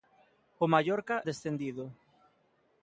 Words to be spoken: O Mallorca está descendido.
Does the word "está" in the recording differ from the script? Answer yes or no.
yes